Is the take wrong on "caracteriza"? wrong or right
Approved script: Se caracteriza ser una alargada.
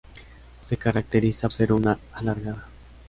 right